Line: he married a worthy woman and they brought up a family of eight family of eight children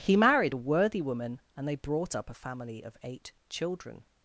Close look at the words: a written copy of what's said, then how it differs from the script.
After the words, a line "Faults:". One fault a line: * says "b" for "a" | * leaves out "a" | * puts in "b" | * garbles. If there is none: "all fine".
he married a worthy woman and they brought up a family of eight children
Faults:
* leaves out "family of eight"